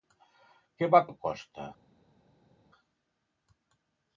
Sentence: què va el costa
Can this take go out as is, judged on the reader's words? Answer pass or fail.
pass